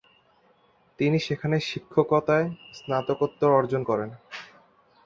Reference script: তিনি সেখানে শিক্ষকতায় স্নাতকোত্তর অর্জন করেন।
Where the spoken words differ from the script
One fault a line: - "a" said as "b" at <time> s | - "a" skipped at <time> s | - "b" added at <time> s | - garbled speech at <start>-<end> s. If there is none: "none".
none